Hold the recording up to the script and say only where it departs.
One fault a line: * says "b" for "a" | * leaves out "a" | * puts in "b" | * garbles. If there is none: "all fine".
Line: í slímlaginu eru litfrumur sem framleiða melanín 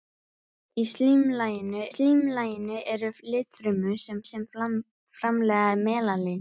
* puts in "slímlaginu"
* puts in "sem"